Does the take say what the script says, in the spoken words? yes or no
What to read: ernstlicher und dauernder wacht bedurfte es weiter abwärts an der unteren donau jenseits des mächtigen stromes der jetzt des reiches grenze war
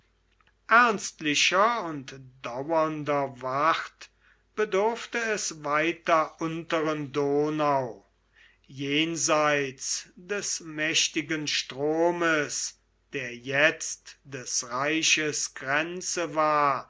no